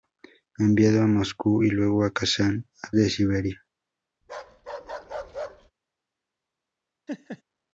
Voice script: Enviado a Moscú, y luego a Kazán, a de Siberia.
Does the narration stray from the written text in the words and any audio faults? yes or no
yes